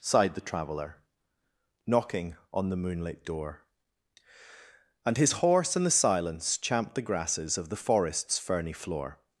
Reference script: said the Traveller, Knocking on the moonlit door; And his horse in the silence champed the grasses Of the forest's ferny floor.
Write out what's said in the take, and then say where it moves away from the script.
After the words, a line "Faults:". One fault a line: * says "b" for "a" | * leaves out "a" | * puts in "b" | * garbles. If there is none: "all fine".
sighed the Traveller, Knocking on the moonlit door; And his horse in the silence champed the grasses Of the forest's ferny floor.
Faults:
* says "sighed" for "said"